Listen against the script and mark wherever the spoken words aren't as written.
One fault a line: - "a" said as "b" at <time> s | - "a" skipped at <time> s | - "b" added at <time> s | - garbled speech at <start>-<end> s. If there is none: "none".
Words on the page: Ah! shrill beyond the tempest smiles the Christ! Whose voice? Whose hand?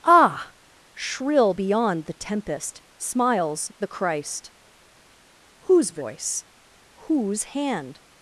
none